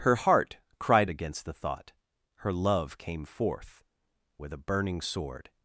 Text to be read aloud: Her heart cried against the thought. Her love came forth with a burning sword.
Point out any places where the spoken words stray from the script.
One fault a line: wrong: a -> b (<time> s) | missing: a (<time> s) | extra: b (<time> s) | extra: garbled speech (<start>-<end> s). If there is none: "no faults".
no faults